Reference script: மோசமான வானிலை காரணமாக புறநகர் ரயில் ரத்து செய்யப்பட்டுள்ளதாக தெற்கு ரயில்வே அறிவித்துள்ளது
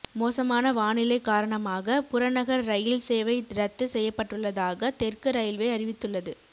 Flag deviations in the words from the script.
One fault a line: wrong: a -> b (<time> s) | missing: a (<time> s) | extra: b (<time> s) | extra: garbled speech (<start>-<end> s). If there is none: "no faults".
extra: சேவை (3.0 s)